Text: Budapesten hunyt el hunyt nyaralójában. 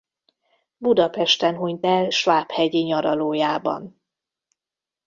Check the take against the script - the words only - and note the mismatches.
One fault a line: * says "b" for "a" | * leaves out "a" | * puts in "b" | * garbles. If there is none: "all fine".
* says "svábhegyi" for "hunyt"